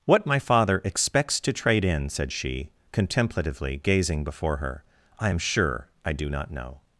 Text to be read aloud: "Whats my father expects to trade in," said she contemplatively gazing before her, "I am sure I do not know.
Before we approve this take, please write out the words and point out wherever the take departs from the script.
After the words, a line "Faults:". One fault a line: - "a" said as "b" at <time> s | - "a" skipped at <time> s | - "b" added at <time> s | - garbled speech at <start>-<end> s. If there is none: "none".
"What my father expects to trade in," said she contemplatively gazing before her, "I am sure I do not know.
Faults:
- "Whats" said as "What" at 0.1 s